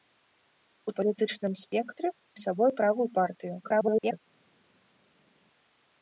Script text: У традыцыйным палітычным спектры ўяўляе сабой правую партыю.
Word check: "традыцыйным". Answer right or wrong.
wrong